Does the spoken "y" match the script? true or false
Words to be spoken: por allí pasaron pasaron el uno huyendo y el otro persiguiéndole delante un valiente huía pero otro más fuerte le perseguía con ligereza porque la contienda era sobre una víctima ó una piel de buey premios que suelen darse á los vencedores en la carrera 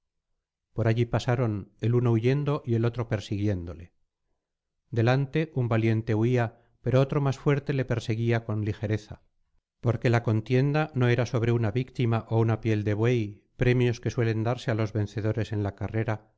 true